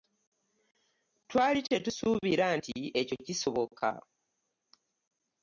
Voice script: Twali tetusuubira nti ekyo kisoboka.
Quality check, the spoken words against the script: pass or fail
pass